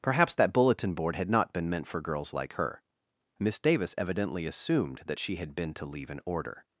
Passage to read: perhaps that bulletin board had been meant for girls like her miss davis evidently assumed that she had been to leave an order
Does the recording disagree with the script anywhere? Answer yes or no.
yes